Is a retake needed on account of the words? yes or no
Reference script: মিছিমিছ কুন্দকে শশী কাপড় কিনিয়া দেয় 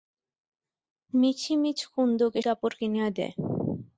yes